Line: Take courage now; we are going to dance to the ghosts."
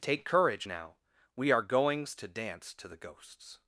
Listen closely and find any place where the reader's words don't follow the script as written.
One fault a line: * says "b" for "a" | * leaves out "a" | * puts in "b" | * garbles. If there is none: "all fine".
* says "goings" for "going"